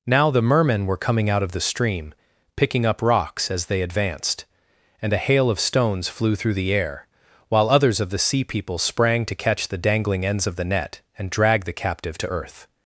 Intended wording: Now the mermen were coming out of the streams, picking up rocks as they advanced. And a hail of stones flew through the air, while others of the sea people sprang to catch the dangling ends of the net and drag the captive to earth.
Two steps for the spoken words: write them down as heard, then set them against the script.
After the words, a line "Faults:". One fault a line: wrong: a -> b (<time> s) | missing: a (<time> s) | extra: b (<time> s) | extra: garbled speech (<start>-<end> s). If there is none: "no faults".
Now the mermen were coming out of the stream, picking up rocks as they advanced. And a hail of stones flew through the air, while others of the sea people sprang to catch the dangling ends of the net and drag the captive to earth.
Faults:
wrong: streams -> stream (1.6 s)